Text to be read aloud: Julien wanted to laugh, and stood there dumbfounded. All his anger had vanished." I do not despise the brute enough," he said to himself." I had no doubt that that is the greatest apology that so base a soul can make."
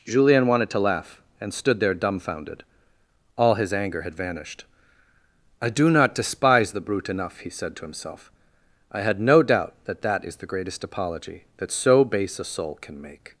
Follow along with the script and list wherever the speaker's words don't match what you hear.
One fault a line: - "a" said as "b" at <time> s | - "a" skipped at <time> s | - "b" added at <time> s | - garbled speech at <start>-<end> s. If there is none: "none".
none